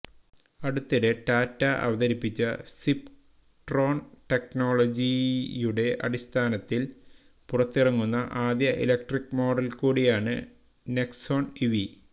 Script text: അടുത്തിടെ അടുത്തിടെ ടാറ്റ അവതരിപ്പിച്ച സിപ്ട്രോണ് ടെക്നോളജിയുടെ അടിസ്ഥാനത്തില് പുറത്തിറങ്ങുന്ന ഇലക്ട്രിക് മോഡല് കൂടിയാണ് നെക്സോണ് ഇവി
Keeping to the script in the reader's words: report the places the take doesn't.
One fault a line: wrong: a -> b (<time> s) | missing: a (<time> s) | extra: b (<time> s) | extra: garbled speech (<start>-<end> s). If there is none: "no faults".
missing: അടുത്തിടെ (1.1 s)
extra: ആദ്യ (8.5 s)